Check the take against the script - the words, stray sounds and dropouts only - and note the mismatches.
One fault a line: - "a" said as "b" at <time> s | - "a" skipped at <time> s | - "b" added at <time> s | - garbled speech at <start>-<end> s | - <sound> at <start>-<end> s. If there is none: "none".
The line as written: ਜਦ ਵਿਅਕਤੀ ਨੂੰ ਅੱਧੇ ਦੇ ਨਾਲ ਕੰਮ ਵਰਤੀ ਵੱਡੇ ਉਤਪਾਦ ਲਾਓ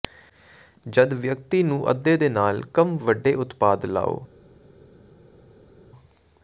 - "ਵਰਤੀ" skipped at 3.0 s